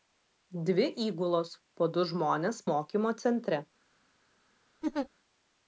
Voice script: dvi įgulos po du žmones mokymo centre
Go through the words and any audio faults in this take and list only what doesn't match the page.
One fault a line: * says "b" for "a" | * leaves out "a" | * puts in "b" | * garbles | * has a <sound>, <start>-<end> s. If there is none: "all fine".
* has a laugh, 4.8-5.1 s